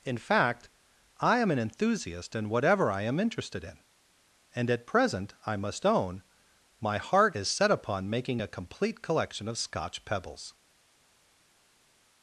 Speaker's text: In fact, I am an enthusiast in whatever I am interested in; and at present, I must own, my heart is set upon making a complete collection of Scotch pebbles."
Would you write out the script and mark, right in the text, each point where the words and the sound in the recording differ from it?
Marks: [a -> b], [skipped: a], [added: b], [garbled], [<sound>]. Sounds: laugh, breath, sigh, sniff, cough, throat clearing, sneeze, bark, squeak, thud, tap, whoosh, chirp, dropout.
In fact, I am an enthusiast in whatever I am interested in; and at present, I must own, my heart is set upon making a complete collection of Scotch pebbles."